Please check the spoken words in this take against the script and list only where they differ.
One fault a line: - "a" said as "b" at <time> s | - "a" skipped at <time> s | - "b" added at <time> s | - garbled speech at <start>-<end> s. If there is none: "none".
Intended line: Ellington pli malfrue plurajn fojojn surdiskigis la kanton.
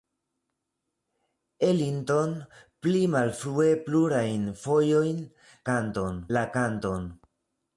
- "surdiskigis" said as "kanton" at 5.7 s